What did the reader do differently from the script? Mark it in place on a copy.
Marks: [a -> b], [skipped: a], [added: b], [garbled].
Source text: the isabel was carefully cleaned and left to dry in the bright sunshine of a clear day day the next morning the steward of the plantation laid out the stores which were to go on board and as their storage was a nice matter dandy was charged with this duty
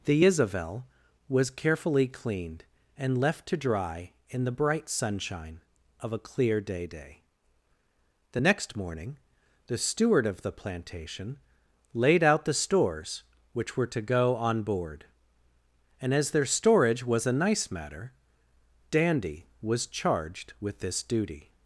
the isabel was carefully cleaned and left to dry in the bright sunshine of a clear day day the next morning the steward of the plantation laid out the stores which were to go on board and as their storage was a nice matter dandy was charged with this duty